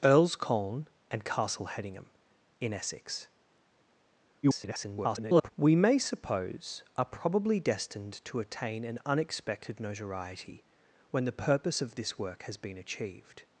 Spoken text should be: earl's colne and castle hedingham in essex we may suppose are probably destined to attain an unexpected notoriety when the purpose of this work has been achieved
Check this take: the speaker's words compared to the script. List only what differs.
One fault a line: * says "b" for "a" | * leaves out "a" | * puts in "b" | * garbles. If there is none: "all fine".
* garbles